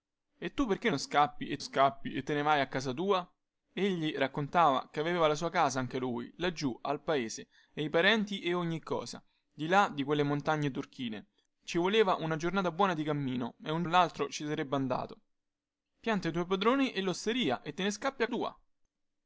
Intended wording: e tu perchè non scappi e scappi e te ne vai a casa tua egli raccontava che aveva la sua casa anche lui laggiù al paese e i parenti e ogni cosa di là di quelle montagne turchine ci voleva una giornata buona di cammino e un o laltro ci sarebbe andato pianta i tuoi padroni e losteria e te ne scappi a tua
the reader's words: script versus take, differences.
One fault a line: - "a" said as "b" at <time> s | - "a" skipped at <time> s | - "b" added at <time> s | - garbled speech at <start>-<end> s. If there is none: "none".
none